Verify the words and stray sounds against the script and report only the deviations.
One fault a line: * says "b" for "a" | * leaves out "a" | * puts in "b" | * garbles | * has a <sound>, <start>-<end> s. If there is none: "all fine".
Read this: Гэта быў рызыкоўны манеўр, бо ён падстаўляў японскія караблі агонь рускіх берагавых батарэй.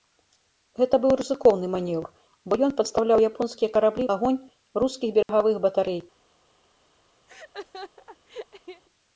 * has a dropout, 5.2-5.3 s
* has a laugh, 7.3-8.8 s